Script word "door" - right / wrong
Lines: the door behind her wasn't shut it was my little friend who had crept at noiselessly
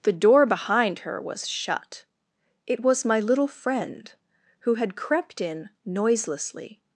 right